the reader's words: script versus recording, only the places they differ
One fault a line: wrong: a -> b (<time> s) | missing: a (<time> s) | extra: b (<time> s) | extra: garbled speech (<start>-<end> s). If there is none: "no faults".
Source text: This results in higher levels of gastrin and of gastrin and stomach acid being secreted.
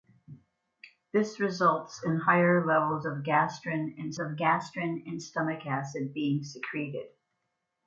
no faults